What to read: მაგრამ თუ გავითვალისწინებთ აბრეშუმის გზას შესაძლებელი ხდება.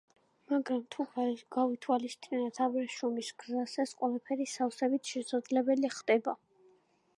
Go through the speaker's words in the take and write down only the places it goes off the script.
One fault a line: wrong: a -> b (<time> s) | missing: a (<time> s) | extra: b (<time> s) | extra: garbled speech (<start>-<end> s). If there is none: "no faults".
extra: ეს ყველაფერი სავსებით (3.9 s)